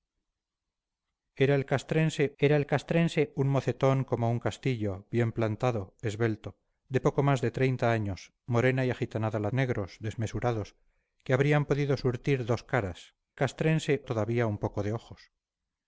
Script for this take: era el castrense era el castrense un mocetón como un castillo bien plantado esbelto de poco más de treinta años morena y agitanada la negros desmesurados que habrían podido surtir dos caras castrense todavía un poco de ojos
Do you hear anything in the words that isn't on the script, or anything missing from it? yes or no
no